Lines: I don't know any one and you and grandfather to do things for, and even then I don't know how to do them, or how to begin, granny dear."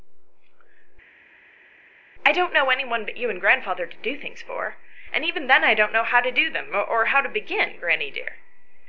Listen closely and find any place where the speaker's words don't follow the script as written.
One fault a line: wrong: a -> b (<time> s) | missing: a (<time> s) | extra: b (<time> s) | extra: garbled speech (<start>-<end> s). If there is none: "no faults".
wrong: and -> but (3.0 s)